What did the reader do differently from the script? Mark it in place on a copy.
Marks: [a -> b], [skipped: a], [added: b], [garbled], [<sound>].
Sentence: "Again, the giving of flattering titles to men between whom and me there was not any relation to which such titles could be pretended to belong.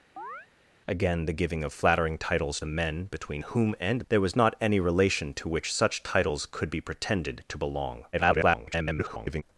[chirp] "Again, the giving of flattering titles [skipped: to] men between whom and [skipped: me] there was not any relation to which such titles could be pretended to belong. [garbled]